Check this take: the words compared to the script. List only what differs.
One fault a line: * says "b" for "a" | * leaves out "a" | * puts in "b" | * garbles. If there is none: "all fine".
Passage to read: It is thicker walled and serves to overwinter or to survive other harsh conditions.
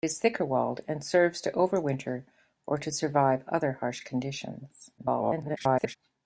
* garbles